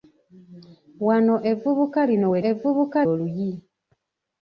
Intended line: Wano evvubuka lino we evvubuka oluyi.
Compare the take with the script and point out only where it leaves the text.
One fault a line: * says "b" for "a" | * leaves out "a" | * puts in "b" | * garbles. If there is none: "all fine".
all fine